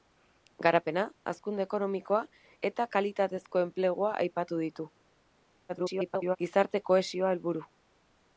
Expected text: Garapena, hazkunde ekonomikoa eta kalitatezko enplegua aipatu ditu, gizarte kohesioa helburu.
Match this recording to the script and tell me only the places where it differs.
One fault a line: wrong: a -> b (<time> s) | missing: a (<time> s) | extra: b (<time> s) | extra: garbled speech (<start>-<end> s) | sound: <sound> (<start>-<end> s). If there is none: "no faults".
extra: garbled speech (5.7-6.4 s)